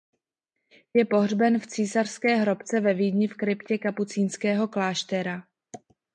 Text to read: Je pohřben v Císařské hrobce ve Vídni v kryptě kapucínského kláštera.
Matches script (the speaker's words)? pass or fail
pass